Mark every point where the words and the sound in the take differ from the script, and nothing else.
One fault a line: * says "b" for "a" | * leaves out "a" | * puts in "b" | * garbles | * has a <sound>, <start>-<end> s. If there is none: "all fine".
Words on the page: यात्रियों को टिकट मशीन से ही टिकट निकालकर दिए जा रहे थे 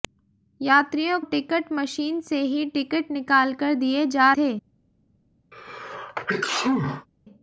* leaves out "को"
* leaves out "रहे"
* has a sneeze, 5.5-7.1 s